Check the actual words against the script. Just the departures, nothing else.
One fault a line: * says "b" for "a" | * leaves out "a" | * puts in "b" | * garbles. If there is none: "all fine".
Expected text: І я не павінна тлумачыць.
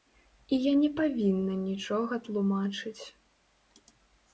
* puts in "нічога"